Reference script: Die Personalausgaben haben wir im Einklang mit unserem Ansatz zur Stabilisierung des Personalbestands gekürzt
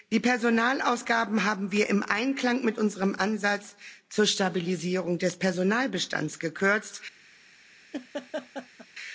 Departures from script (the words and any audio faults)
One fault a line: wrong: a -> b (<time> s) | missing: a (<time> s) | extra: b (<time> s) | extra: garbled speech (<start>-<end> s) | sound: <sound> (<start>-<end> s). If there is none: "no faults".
sound: laugh (7.9-8.9 s)